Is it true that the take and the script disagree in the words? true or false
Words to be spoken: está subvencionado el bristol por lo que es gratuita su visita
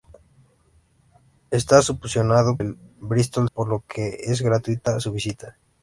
false